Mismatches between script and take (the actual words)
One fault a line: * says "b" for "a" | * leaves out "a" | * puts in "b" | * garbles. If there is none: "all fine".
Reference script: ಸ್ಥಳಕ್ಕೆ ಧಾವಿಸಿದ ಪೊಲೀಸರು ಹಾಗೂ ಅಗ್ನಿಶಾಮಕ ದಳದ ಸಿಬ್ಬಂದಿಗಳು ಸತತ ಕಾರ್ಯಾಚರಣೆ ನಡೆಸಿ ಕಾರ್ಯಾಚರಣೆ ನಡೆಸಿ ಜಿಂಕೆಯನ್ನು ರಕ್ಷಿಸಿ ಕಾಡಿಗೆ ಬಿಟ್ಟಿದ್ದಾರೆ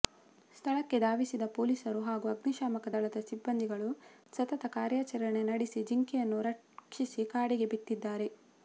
* leaves out "ಕಾರ್ಯಾಚರಣೆ ನಡೆಸಿ"